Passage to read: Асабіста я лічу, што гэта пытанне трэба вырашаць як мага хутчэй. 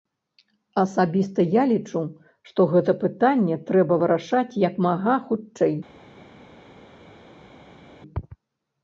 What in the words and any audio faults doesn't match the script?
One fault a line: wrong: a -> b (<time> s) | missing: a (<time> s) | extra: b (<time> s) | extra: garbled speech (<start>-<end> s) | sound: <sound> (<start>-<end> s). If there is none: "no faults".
no faults